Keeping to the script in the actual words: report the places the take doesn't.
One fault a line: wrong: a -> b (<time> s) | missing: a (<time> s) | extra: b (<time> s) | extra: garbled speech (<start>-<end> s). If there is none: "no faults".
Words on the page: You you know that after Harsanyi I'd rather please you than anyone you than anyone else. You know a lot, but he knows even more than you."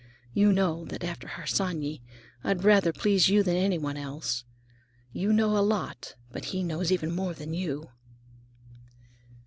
missing: you (0.5 s)
missing: you than anyone (4.0 s)